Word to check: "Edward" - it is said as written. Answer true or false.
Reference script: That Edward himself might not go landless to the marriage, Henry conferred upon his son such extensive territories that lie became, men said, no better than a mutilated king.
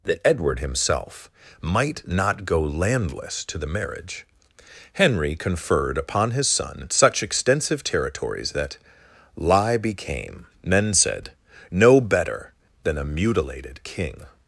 true